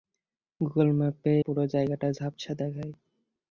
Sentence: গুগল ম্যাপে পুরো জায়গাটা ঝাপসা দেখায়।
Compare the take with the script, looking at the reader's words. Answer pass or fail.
pass